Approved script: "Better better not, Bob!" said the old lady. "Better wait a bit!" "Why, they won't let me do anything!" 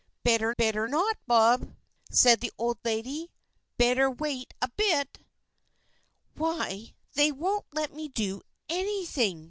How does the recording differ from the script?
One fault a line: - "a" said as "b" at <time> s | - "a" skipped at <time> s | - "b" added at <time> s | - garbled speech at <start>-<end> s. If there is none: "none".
none